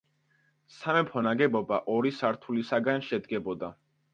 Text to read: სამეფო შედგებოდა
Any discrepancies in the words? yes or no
yes